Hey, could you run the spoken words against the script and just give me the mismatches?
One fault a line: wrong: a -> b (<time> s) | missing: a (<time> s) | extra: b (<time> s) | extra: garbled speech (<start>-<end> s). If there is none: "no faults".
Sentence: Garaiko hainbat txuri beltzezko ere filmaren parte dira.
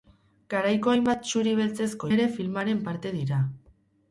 no faults